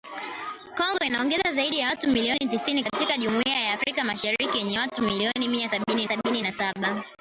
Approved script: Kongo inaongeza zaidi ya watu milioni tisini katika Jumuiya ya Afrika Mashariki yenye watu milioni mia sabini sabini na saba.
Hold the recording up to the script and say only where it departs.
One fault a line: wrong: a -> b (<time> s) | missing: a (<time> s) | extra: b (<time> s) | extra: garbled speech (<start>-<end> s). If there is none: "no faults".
no faults